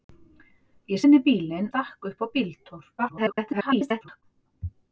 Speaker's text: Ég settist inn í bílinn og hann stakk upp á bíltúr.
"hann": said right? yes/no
no